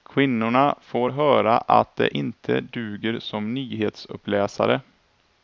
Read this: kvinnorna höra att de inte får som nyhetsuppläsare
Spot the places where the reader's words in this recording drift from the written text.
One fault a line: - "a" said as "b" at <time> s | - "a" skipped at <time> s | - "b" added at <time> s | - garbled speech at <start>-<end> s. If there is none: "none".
- "får" added at 0.8 s
- "får" said as "duger" at 2.6 s